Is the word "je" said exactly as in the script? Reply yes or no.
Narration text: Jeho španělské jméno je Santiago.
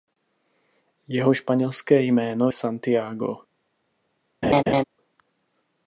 no